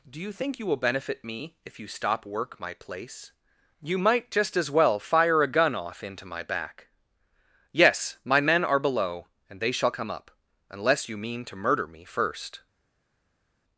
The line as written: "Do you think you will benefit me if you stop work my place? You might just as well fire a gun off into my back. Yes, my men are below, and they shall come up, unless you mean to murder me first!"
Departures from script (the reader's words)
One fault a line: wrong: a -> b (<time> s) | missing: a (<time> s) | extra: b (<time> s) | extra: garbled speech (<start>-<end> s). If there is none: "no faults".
no faults